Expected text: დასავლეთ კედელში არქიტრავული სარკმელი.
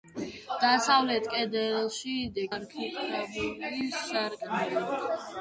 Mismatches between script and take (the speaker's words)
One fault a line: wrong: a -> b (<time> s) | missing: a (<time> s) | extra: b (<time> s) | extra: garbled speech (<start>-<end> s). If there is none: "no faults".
no faults